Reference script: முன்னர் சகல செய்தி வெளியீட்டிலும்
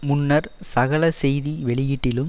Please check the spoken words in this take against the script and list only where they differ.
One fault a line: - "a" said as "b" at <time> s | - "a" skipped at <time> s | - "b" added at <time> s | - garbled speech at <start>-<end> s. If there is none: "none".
none